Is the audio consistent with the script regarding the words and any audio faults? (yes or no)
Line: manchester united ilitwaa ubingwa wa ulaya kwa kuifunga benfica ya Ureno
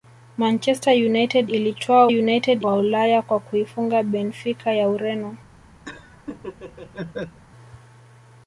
no